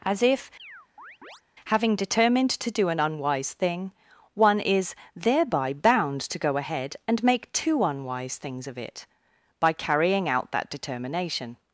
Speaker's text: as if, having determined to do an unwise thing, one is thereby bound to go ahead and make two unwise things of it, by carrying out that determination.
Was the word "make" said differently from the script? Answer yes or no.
no